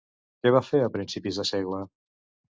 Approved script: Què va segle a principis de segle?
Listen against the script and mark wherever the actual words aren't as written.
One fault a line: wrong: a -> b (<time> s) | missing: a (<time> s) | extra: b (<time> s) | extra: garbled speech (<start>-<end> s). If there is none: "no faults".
wrong: segle -> fer (0.7 s)